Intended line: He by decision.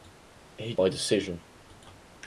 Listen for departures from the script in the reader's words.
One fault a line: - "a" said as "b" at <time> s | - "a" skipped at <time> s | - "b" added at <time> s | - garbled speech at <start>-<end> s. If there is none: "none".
none